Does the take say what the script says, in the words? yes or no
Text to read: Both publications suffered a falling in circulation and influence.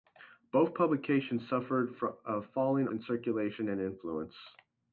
yes